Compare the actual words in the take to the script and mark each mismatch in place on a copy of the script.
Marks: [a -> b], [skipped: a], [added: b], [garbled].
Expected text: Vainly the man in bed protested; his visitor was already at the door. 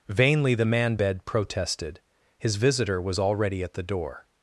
Vainly the man [skipped: in] bed protested; his visitor was already at the door.